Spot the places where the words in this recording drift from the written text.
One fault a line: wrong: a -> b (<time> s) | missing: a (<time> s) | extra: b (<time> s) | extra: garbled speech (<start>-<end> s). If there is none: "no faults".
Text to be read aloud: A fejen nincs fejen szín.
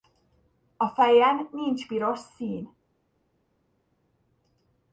wrong: fejen -> piros (1.9 s)